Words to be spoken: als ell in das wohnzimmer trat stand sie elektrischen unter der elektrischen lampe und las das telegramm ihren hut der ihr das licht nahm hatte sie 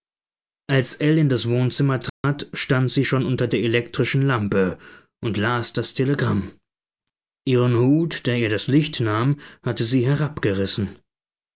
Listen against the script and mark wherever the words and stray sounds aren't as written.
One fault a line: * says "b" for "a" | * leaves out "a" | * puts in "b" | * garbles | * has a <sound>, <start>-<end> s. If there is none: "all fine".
* has a dropout, 2.1-2.2 s
* says "schon" for "elektrischen"